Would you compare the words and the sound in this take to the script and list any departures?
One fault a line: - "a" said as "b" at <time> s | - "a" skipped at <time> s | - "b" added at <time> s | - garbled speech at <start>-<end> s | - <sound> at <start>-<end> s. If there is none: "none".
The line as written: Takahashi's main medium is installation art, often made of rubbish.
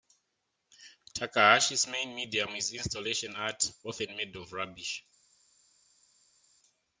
none